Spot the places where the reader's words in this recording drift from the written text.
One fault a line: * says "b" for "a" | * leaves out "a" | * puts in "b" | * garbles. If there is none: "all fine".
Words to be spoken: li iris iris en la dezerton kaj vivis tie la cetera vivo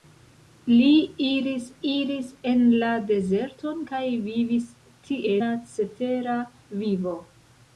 all fine